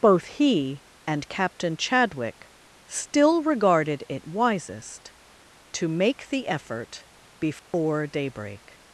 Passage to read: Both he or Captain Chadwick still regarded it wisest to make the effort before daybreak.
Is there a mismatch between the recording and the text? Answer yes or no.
yes